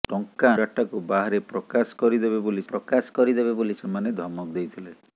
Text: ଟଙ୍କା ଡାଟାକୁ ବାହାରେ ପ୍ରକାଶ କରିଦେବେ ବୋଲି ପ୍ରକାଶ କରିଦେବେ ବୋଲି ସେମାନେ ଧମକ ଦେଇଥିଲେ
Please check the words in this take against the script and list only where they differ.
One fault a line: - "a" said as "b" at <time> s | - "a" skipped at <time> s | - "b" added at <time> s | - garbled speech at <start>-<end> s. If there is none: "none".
none